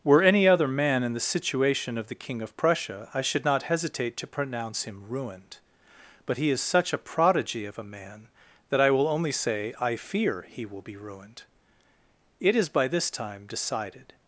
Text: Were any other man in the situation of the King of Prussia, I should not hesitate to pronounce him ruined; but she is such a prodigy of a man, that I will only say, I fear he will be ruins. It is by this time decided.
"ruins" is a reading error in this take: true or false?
true